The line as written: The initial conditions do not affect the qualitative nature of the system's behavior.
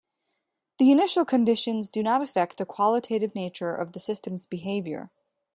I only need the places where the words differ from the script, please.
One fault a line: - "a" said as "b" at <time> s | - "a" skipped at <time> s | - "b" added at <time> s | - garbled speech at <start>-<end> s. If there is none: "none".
none